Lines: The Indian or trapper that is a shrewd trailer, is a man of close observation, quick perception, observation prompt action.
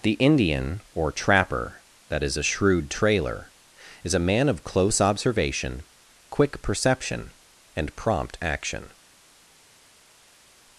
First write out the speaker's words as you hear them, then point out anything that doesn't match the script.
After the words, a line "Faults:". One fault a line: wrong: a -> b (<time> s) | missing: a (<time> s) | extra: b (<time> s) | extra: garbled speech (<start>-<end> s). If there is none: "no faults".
The Indian or trapper that is a shrewd trailer, is a man of close observation, quick perception, and prompt action.
Faults:
wrong: observation -> and (7.7 s)